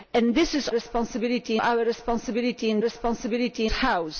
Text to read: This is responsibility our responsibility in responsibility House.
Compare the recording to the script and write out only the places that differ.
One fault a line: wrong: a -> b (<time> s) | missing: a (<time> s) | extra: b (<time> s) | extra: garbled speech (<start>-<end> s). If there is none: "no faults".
no faults